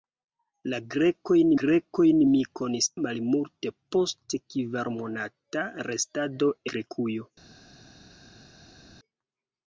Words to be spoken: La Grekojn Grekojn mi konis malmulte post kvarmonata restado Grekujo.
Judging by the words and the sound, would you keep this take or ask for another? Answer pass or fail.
pass